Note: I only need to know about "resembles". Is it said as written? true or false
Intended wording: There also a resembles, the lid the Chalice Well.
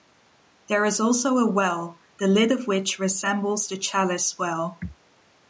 false